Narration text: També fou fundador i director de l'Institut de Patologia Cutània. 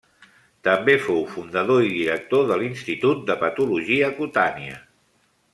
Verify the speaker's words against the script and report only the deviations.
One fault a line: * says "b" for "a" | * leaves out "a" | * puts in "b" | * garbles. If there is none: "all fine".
all fine